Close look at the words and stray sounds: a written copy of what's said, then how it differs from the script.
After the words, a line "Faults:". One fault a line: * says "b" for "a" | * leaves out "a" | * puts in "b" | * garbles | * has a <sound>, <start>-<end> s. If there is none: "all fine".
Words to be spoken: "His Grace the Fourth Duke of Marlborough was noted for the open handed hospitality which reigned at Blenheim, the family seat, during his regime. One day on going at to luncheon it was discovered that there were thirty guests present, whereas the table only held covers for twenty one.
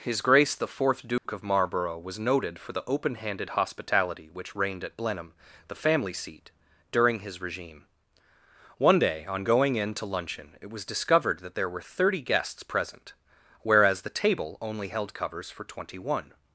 "His Grace the Fourth Duke of Marlborough was noted for the open handed hospitality which reigned at Blenheim, the family seat, during his regime. One day on going in to luncheon it was discovered that there were thirty guests present, whereas the table only held covers for twenty one.
Faults:
* has a dropout, 1.2-1.3 s
* says "in" for "at"